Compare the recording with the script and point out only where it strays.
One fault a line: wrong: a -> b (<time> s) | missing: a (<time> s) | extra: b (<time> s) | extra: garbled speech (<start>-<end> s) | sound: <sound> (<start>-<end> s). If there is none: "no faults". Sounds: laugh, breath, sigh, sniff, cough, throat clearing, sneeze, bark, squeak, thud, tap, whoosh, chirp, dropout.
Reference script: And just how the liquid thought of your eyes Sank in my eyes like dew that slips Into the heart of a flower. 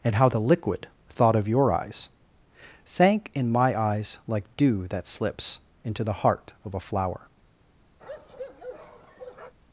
missing: just (0.1 s)
sound: bark (8.0-9.6 s)